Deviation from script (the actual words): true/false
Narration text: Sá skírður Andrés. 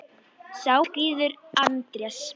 false